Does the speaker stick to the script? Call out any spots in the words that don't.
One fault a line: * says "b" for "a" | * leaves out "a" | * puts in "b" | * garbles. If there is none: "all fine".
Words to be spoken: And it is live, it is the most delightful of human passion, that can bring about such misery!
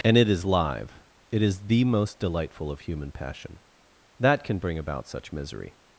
all fine